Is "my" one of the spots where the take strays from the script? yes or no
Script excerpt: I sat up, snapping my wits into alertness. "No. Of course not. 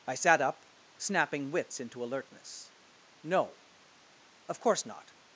yes